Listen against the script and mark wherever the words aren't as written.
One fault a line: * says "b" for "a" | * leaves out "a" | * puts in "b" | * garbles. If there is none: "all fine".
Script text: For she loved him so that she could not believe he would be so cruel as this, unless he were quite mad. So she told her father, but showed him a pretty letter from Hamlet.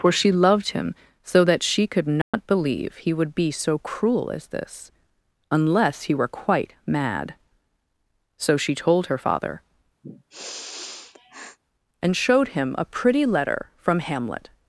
* says "and" for "but"